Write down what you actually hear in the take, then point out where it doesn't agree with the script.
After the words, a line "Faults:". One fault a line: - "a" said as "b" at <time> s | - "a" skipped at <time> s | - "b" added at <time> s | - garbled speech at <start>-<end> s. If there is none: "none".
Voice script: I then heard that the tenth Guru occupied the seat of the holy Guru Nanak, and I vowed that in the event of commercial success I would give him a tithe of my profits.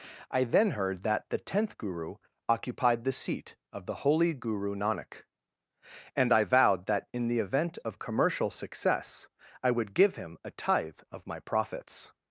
I then heard that the tenth Guru occupied the seat of the holy Guru Nanak, and I vowed that in the event of commercial success I would give him a tithe of my profits.
Faults:
none